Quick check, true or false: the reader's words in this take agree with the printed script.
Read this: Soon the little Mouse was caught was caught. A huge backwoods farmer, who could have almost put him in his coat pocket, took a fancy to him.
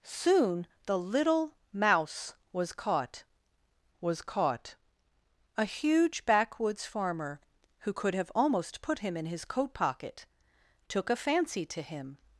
true